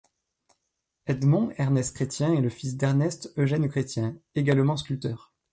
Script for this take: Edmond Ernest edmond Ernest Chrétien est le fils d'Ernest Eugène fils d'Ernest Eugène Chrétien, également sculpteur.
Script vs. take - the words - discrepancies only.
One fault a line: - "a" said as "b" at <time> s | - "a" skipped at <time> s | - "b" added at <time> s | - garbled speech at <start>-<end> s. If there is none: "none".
- "edmond Ernest" skipped at 1.9 s
- "fils d'Ernest Eugène" skipped at 3.7 s